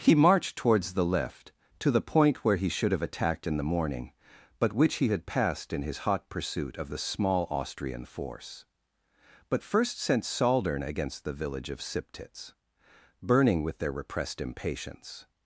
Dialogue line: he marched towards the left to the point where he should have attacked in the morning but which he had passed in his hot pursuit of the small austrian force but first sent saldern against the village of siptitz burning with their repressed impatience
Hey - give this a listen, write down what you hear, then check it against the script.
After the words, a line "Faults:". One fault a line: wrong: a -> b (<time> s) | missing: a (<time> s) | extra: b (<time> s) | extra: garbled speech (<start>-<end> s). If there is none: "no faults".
he marched towards the left to the point where he should have attacked in the morning but which he had passed in his hot pursuit of the small austrian force but first sent saldern against the village of siptitz burning with their repressed impatience
Faults:
no faults